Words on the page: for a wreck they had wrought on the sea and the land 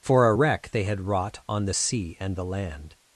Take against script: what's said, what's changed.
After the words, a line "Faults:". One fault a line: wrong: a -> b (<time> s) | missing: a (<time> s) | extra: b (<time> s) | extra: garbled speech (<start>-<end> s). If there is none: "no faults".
for a wreck they had wrought on the sea and the land
Faults:
no faults